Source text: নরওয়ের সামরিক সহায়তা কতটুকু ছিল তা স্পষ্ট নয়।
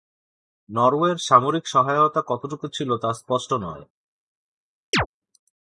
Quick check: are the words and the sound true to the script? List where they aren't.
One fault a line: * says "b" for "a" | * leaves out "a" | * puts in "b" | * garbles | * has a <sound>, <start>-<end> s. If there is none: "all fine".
* has a chirp, 4.9-5.1 s